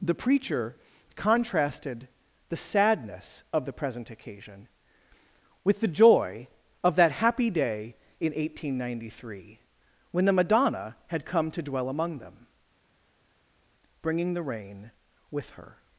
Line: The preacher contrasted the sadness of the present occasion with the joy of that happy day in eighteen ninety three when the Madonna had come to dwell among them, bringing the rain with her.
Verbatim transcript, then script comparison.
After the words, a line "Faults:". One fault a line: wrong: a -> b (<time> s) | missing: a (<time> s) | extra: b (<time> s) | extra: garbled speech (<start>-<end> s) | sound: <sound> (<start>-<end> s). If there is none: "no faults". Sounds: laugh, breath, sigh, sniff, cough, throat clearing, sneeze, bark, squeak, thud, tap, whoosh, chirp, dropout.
The preacher contrasted the sadness of the present occasion with the joy of that happy day in eighteen ninety three when the Madonna had come to dwell among them, bringing the rain with her.
Faults:
no faults